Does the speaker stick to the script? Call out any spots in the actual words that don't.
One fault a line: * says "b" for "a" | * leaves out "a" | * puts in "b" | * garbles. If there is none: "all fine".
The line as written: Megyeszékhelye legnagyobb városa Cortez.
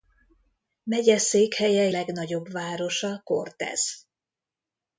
all fine